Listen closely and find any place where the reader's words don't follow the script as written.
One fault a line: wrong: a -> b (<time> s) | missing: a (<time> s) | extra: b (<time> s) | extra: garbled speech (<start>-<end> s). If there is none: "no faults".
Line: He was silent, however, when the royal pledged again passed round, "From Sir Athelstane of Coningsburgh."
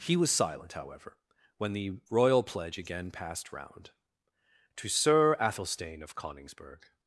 wrong: pledged -> pledge (2.4 s)
wrong: From -> To (4.8 s)